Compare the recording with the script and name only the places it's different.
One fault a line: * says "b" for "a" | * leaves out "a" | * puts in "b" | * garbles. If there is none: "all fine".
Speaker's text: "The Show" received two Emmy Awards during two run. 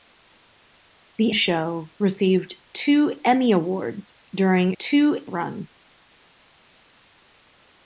all fine